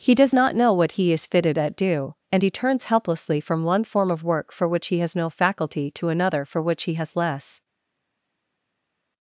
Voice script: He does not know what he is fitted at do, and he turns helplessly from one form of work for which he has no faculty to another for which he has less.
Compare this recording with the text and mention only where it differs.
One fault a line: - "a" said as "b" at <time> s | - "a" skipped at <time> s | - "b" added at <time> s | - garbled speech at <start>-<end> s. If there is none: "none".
none